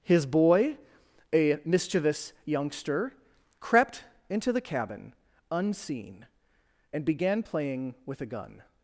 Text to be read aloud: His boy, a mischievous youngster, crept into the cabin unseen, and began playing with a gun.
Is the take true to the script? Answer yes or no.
yes